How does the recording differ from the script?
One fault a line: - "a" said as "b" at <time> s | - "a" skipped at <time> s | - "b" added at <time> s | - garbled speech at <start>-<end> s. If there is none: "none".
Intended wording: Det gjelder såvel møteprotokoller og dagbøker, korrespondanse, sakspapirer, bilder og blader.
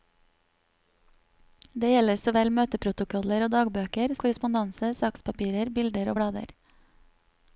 none